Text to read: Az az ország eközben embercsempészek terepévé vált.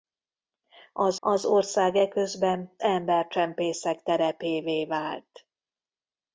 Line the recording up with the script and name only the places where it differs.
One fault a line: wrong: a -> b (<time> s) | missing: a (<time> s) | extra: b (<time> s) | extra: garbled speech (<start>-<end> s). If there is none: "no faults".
no faults